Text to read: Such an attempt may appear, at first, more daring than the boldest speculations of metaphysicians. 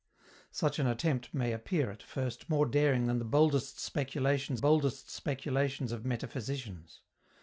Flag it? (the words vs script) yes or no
yes